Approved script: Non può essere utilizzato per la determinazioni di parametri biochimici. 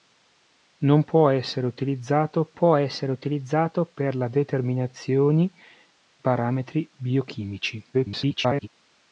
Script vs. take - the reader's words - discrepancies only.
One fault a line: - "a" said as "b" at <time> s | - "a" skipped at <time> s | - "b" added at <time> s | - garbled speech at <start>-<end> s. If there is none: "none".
- "può essere utilizzato" added at 2.5 s
- "di" skipped at 5.5 s
- garbled speech at 7.9-8.7 s